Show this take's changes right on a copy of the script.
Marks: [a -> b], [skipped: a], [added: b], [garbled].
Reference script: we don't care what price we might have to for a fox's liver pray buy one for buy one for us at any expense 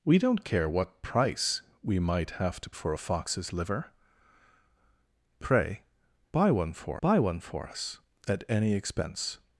we don't care what price we might have to for a fox's liver pray buy one for buy one for us at any expense